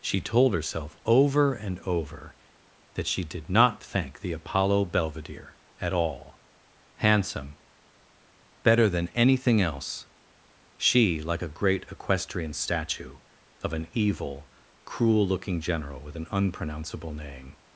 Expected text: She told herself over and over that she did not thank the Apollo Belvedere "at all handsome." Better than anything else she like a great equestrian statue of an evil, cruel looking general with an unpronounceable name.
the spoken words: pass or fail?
pass